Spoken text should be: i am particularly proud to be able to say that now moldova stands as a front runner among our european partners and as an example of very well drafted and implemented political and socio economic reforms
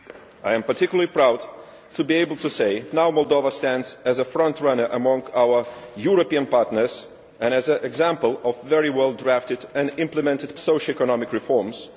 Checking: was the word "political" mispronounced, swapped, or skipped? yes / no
yes